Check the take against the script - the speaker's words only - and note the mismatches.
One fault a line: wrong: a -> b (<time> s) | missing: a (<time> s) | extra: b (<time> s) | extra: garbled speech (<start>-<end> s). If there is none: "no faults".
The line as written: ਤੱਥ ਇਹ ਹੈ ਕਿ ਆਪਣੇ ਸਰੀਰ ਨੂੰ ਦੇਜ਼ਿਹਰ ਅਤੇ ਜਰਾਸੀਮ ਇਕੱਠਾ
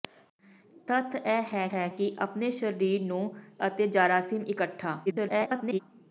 extra: ਹੈ (1.7 s)
missing: ਦੇਜ਼ਿਹਰ (3.2 s)
extra: garbled speech (5.1-5.8 s)